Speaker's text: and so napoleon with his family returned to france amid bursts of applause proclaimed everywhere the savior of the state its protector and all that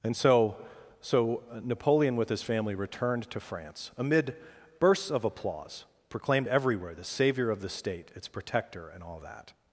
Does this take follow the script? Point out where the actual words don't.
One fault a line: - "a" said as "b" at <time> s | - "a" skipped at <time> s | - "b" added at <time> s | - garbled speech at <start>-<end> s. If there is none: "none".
- "so" added at 1.0 s